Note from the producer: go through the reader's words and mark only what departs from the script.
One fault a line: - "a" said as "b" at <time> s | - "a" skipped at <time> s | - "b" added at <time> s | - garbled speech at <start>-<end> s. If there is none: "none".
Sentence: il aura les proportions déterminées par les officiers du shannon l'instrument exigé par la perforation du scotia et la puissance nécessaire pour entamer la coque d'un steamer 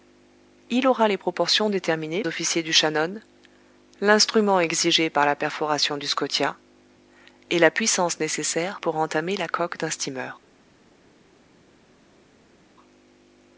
- "par les" skipped at 2.2 s